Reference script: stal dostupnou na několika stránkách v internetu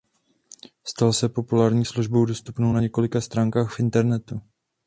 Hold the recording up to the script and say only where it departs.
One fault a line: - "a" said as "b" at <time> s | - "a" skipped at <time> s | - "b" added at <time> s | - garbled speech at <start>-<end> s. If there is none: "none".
- "se populární službou" added at 1.1 s